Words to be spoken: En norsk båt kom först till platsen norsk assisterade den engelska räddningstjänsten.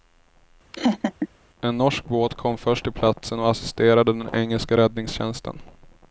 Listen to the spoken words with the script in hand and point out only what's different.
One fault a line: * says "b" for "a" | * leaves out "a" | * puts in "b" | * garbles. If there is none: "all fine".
* says "och" for "norsk"